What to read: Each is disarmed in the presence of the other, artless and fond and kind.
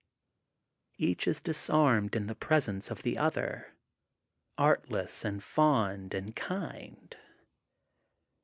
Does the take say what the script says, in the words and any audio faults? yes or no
yes